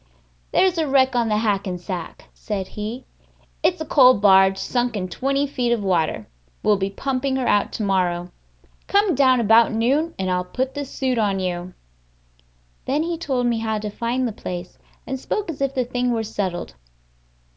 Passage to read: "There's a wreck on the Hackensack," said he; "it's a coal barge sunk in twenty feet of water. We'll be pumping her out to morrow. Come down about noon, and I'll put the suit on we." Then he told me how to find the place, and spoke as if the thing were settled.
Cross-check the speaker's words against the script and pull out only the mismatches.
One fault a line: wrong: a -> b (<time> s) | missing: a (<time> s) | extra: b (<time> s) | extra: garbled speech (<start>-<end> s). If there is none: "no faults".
wrong: we -> you (11.4 s)